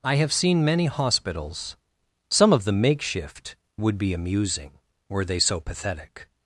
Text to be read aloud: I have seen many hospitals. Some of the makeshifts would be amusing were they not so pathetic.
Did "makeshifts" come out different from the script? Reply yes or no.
yes